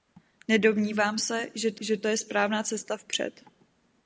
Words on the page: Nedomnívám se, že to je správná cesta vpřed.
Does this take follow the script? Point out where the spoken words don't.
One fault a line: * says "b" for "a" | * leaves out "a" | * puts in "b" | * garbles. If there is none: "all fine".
* puts in "že to"